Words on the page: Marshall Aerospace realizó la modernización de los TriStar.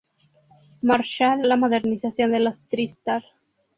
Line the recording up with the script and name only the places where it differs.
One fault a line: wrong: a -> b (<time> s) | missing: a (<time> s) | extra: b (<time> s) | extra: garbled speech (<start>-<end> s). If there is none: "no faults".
missing: Aerospace realizó (1.4 s)